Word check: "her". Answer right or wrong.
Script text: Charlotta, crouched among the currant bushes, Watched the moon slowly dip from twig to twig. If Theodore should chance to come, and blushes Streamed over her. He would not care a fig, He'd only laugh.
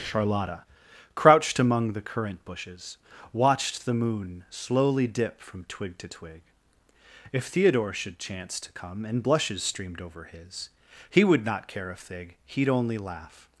wrong